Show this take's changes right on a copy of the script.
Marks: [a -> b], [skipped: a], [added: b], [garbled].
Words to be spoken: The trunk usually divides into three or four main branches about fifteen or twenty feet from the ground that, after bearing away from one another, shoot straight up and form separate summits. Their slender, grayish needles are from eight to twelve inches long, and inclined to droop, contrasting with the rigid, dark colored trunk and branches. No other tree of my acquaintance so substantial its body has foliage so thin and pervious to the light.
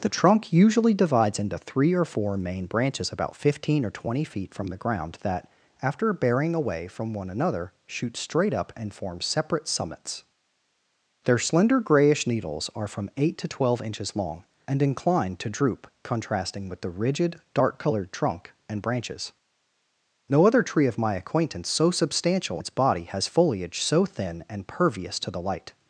The trunk usually divides into three or four main branches about fifteen or twenty feet from the ground that, after bearing away from one another, shoot straight up and form separate summits. Their slender, grayish needles are from eight to twelve inches long, and inclined to droop, contrasting with the rigid, dark colored trunk and branches. No other tree of my acquaintance so substantial its body has foliage so thin and pervious to the light.